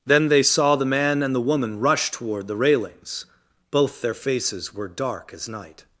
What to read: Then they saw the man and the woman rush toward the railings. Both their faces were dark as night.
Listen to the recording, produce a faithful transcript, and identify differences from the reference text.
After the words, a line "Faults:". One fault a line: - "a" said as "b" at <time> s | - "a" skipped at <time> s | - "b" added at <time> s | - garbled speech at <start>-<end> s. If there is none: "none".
Then they saw the man and the woman rush toward the railings. Both their faces were dark as night.
Faults:
none